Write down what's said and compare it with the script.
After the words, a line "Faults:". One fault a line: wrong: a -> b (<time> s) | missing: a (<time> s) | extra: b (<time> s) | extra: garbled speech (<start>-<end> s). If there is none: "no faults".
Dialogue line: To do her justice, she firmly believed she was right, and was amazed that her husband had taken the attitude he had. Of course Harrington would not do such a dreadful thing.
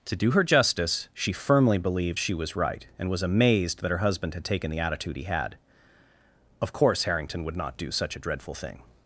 To do her justice, she firmly believed she was right, and was amazed that her husband had taken the attitude he had. Of course Harrington would not do such a dreadful thing.
Faults:
no faults